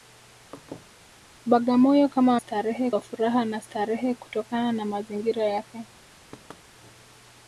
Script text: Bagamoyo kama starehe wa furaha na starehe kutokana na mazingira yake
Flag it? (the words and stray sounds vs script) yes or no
yes